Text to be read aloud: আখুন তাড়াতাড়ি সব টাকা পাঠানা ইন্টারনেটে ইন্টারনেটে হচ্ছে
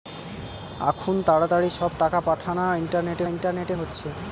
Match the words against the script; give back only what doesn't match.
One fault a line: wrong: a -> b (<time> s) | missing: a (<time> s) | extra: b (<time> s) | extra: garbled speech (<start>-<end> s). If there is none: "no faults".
no faults